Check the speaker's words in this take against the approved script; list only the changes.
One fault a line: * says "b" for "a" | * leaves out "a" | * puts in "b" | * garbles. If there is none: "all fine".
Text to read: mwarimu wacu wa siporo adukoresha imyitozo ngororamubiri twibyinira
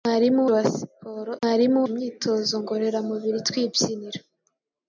* leaves out "wacu"
* says "mwarimu" for "adukoresha"